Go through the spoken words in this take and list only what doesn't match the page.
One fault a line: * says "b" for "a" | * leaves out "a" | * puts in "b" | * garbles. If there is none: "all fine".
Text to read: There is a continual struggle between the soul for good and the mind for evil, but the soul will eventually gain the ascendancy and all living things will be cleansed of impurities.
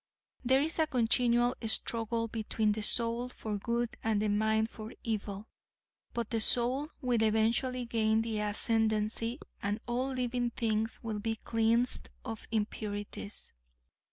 all fine